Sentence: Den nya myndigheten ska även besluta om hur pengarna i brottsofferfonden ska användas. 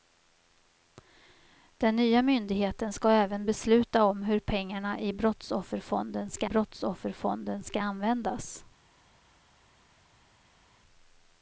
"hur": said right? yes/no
yes